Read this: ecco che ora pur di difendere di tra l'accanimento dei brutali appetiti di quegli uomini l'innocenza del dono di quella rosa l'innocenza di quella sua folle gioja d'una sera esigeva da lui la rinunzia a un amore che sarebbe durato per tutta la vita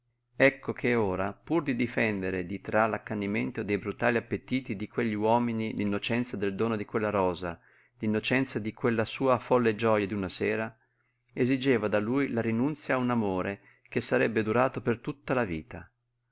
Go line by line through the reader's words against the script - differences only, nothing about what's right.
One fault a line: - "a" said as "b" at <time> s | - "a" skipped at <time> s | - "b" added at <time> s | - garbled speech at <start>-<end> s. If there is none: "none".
none